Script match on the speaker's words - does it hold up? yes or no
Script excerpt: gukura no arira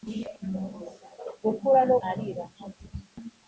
yes